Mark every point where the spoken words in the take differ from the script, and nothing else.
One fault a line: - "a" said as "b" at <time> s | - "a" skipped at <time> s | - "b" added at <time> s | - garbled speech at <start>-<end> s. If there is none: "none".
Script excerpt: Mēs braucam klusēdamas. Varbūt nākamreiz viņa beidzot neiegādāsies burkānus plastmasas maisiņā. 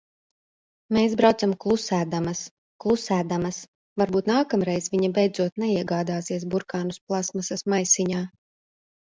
- "klusēdamas" added at 2.8 s